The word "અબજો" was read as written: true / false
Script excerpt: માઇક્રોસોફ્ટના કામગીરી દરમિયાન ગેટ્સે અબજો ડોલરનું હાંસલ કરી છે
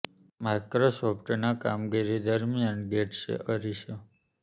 false